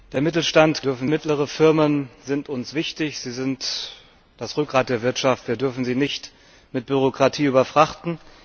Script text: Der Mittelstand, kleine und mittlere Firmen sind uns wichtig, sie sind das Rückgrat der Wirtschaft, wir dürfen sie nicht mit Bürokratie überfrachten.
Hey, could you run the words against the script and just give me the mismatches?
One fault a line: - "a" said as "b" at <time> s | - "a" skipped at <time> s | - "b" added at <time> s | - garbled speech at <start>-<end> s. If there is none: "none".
- "kleine" said as "dürfen" at 0.8 s